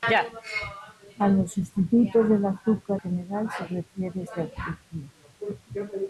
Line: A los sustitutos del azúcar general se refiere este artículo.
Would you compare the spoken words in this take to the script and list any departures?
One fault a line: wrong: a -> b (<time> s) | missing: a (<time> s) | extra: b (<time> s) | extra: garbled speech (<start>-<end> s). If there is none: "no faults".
no faults